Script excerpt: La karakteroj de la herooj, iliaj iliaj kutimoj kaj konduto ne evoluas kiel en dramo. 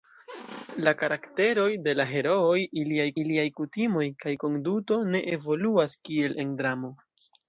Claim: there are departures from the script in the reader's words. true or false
false